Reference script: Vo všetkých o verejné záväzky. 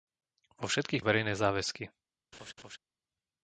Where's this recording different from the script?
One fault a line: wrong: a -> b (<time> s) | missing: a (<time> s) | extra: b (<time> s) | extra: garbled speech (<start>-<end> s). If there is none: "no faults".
no faults